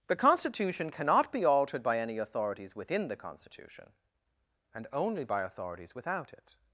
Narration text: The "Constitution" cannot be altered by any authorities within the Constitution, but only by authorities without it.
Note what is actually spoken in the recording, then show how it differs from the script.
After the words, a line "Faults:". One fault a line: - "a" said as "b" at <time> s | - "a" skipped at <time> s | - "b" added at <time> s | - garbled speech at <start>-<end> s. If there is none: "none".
The "Constitution" cannot be altered by any authorities within the Constitution, and only by authorities without it.
Faults:
- "but" said as "and" at 4.7 s